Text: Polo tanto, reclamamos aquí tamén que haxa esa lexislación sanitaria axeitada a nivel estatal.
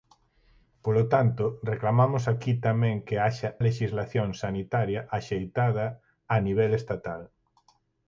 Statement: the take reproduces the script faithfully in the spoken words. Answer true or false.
false